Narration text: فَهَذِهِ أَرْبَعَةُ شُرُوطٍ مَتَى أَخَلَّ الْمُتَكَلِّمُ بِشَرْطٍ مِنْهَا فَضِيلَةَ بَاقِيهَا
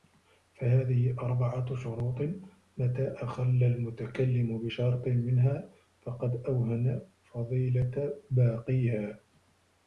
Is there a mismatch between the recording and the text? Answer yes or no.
yes